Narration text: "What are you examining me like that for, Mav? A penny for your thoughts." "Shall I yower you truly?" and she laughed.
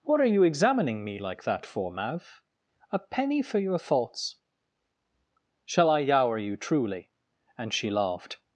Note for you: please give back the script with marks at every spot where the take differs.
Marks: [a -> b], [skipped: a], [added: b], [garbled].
"What are you examining me like that for, Mav? A penny for your thoughts." "Shall I yower you truly?" and she laughed.